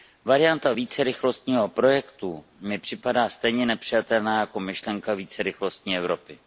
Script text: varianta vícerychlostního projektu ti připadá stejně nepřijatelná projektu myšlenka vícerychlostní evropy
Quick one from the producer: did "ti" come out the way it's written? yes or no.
no